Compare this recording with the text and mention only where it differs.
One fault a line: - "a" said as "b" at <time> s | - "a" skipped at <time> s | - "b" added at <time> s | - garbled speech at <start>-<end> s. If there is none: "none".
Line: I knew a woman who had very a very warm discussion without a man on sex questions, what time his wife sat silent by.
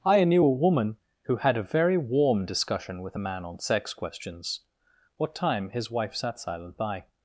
- "very" skipped at 1.6 s
- "without" said as "with" at 3.0 s